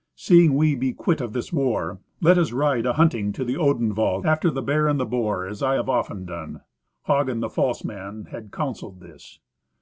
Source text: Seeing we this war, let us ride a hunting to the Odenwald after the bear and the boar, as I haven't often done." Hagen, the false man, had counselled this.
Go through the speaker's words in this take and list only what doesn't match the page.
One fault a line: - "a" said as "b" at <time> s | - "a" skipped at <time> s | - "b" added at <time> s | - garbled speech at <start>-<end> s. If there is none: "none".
- "be quit of" added at 0.7 s
- "haven't" said as "have" at 5.7 s